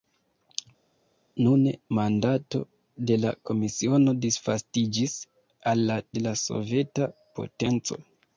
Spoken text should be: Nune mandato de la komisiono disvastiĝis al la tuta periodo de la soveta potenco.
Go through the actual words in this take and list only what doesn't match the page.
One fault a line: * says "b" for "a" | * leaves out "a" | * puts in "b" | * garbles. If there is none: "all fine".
* leaves out "tuta periodo"